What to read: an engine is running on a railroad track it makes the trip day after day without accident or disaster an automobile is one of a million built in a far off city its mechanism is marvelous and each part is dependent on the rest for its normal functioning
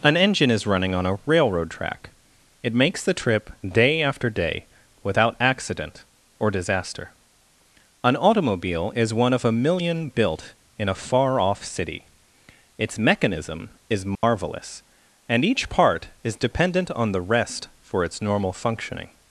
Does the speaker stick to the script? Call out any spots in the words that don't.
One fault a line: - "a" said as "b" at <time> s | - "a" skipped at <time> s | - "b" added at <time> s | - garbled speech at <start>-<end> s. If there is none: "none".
none